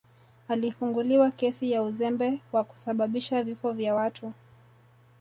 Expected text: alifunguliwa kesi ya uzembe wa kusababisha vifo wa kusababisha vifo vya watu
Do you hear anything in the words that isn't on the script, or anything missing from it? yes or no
yes